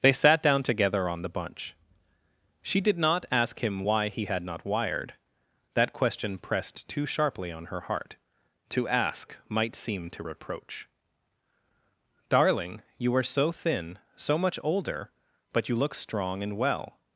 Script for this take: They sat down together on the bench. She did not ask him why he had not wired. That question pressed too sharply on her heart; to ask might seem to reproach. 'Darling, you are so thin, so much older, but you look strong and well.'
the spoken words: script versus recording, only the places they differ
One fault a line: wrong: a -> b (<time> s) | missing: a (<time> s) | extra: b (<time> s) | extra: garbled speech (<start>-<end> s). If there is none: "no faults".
wrong: bench -> bunch (1.3 s)